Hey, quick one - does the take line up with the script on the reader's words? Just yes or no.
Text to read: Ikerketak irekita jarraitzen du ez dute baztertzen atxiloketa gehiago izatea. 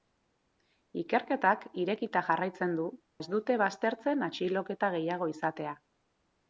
yes